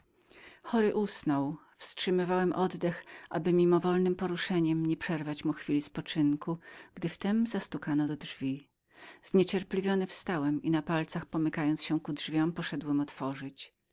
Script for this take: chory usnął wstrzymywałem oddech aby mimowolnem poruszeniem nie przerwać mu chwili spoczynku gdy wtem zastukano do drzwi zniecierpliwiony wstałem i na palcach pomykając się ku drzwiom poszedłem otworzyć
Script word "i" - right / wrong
right